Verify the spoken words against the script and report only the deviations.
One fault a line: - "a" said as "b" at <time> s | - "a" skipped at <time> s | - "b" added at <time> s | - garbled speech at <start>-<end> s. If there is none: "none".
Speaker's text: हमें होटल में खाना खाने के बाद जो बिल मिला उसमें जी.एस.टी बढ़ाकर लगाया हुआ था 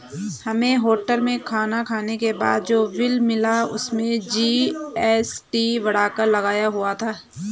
none